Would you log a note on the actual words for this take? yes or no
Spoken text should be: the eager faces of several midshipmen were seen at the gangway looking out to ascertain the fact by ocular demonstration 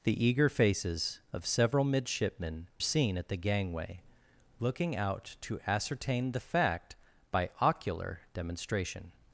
yes